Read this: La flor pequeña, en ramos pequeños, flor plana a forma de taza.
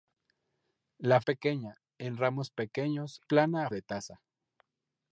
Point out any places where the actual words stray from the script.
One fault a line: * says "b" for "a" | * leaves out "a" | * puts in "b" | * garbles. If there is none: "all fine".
* leaves out "flor"
* leaves out "flor"
* leaves out "forma"